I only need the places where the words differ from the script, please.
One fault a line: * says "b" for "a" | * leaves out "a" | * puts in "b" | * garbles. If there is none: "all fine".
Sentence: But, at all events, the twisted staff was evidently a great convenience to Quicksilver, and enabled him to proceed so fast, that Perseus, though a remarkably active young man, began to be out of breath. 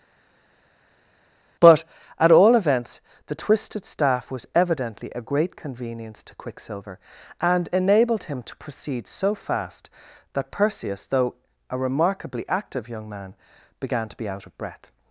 all fine